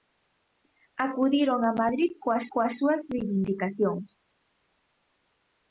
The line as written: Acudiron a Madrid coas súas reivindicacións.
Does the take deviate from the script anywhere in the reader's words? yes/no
yes